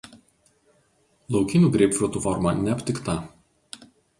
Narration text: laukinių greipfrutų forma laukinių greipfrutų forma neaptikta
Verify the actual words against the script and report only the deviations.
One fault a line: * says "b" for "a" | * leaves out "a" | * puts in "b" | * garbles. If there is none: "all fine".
* leaves out "laukinių greipfrutų forma"